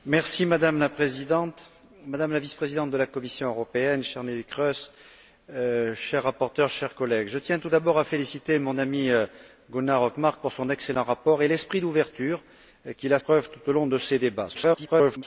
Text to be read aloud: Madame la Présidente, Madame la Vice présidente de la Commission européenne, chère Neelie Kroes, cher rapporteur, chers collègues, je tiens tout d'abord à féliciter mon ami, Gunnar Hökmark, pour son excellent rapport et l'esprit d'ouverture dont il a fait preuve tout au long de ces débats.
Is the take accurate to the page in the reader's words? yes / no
no